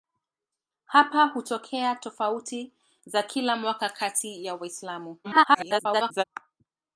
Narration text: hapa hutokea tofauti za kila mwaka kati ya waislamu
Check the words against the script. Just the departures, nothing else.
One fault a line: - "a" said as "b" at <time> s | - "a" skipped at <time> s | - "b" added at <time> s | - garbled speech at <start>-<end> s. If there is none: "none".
- garbled speech at 5.2-6.2 s